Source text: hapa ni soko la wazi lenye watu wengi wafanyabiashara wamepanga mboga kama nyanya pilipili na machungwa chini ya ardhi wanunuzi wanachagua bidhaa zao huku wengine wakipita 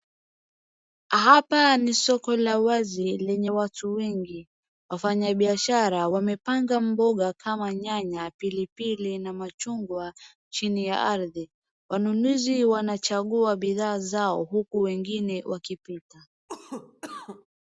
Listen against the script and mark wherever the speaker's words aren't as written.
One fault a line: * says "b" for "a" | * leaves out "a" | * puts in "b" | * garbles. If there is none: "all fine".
all fine